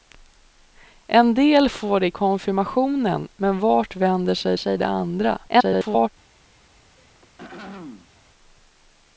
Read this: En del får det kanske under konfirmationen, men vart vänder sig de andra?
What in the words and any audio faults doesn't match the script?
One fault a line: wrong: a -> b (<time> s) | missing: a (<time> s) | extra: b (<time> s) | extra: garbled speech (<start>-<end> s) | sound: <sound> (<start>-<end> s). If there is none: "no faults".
missing: kanske under (2.1 s)
extra: sig (4.6 s)
extra: garbled speech (5.5-6.1 s)
sound: throat clearing (7.0-8.2 s)